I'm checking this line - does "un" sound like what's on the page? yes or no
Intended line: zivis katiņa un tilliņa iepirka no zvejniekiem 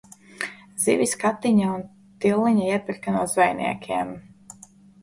yes